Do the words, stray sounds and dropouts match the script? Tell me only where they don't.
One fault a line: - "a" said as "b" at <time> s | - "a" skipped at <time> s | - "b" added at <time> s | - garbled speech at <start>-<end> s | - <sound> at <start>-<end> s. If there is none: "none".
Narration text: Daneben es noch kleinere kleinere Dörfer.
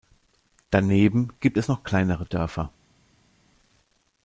- "gibt" added at 1.4 s
- "kleinere" skipped at 2.3 s